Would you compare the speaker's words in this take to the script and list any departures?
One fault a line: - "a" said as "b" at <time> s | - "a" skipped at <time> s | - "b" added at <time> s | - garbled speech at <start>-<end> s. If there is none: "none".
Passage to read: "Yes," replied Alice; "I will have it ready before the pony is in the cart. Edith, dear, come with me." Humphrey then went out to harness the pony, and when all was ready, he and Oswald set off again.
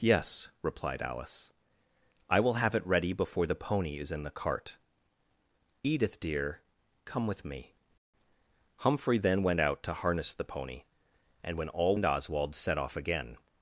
- "was ready he" skipped at 12.0 s